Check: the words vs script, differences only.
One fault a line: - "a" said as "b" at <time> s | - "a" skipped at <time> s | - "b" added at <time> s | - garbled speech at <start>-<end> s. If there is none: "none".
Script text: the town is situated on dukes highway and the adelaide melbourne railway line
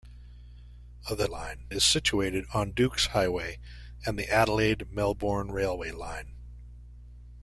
- "town" said as "line" at 1.2 s